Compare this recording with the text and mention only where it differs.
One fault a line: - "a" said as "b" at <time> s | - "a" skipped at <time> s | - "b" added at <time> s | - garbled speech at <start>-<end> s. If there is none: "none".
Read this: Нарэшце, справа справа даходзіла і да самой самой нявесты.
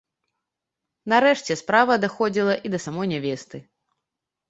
- "справа" skipped at 2.0 s
- "самой" skipped at 3.1 s